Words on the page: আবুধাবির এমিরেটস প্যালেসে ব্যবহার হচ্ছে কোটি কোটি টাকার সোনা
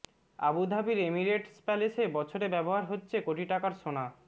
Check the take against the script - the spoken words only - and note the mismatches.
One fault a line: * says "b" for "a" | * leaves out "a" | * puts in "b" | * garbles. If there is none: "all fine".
* puts in "বছরে"
* leaves out "কোটি"